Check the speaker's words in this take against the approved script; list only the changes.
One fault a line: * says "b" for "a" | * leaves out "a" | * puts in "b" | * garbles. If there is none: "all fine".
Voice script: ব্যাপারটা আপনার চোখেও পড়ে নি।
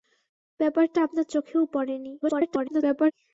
* garbles